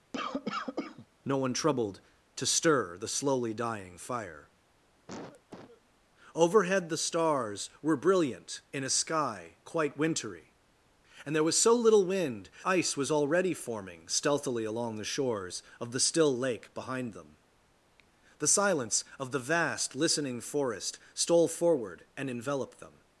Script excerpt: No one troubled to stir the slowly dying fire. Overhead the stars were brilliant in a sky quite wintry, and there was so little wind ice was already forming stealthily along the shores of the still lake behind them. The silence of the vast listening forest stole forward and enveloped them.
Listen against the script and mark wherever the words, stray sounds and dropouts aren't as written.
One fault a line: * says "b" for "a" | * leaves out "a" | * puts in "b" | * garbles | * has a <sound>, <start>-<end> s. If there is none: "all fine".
* has a cough, 0.1-1.1 s
* has a cough, 5.1-5.8 s